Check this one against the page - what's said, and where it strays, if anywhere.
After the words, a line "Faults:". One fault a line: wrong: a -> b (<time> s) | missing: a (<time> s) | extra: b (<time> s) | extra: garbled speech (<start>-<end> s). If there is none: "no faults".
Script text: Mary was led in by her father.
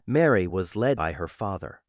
Mary was led by her father.
Faults:
missing: in (1.0 s)